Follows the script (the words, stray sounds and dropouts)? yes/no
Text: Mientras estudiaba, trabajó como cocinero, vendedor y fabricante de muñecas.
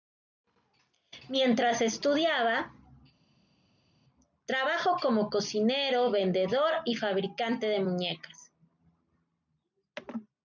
yes